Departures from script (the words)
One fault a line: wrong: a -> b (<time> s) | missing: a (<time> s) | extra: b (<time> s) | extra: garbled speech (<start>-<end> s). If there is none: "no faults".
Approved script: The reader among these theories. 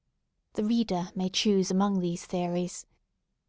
extra: may choose (1.1 s)